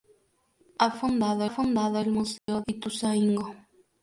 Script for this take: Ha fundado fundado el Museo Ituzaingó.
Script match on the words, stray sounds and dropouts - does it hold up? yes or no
no